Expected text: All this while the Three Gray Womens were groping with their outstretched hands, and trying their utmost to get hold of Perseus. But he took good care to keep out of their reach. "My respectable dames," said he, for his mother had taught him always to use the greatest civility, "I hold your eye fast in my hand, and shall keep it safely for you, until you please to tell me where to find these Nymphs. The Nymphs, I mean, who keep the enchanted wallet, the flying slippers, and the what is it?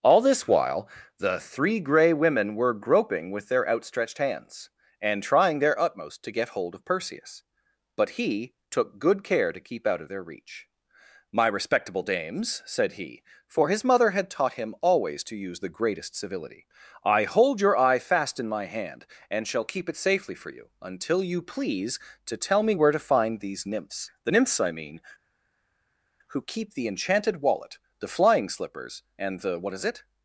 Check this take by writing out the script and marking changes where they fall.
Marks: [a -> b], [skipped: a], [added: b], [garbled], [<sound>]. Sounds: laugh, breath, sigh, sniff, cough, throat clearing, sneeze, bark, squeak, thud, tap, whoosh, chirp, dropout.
All this while the Three Gray [Womens -> Women] were groping with their outstretched hands, and trying their utmost to get hold of Perseus. But he took good care to keep out of their reach. "My respectable dames," said he, for his mother had taught him always to use the greatest civility, "I hold your eye fast in my hand, and shall keep it safely for you, until you please to tell me where to find these Nymphs. The Nymphs, I mean, who keep the enchanted wallet, the flying slippers, and the what is it?